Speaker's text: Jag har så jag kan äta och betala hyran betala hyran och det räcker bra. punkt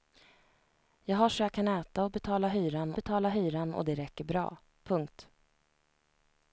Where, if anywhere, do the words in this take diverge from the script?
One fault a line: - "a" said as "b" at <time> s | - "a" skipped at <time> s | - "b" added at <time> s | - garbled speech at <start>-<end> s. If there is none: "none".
none